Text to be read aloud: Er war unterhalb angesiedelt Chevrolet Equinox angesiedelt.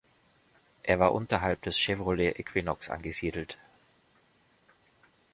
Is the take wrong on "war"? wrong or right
right